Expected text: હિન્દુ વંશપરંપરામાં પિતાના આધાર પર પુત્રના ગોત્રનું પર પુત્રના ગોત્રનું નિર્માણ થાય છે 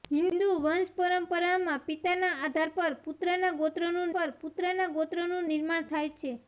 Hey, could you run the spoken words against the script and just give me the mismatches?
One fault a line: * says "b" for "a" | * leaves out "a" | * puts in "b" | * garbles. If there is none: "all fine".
all fine